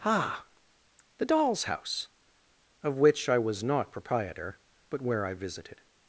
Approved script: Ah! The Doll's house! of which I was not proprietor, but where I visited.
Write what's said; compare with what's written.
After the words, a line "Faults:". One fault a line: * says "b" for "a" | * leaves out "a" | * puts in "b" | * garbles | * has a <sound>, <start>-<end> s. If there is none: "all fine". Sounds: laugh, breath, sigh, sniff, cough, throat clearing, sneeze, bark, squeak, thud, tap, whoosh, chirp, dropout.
Ah! The Doll's house! of which I was not proprietor, but where I visited.
Faults:
all fine